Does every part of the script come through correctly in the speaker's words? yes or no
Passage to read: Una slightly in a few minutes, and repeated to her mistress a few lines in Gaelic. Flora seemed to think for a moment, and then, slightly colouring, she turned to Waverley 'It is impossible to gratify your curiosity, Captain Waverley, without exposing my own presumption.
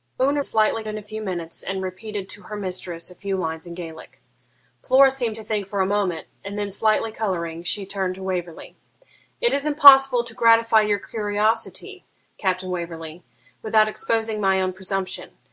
yes